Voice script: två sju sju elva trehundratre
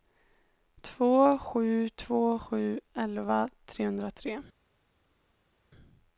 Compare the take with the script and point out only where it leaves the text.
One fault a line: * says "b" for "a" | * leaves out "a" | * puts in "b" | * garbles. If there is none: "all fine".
* puts in "två"